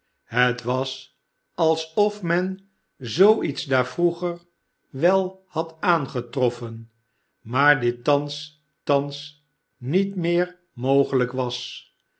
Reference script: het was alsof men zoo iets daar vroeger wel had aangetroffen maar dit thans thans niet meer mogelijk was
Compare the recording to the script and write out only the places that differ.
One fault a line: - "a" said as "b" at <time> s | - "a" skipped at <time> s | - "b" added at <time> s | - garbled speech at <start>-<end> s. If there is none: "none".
none